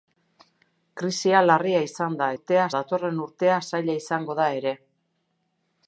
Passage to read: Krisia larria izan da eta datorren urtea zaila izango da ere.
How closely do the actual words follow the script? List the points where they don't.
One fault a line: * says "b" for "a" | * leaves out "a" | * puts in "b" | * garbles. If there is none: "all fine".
* says "urtea" for "eta"